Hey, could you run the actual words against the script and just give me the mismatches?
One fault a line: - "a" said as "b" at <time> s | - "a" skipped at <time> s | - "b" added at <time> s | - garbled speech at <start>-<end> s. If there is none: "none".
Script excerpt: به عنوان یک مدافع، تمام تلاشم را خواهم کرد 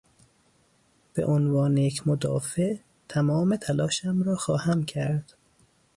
none